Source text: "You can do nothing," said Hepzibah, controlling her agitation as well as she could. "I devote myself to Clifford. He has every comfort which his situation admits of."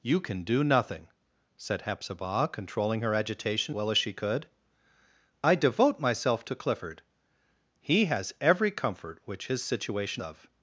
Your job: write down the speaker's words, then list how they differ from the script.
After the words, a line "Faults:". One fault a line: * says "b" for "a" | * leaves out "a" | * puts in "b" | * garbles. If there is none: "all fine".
"You can do nothing," said Hepzibah, controlling her agitation well as she could. "I devote myself to Clifford. He has every comfort which his situation of."
Faults:
* leaves out "as"
* leaves out "admits"